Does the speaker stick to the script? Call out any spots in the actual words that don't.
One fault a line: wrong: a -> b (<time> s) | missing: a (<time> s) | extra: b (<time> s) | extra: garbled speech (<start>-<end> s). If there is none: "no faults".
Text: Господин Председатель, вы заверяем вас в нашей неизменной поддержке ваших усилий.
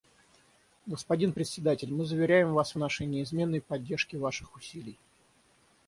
wrong: вы -> мы (1.9 s)